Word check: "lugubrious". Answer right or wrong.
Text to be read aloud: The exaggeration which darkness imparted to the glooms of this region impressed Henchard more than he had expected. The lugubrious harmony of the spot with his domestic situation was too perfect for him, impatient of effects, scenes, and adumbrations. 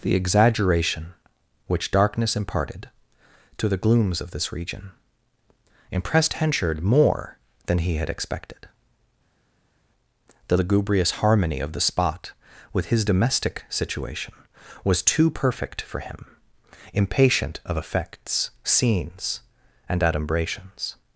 right